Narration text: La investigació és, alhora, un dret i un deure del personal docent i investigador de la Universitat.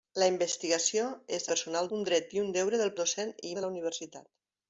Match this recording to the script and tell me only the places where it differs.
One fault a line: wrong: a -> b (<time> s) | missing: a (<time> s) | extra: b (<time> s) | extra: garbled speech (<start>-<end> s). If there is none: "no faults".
wrong: alhora -> personal (1.5 s)
missing: personal (2.9 s)
missing: investigador (3.5 s)